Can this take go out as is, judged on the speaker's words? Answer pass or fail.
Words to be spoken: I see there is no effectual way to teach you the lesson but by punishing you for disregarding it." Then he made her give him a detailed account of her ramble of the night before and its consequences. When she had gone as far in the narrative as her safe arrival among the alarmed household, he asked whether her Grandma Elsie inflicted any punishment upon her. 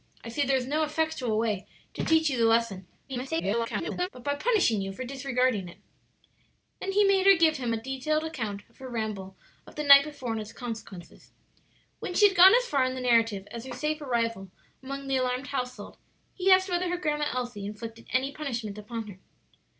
fail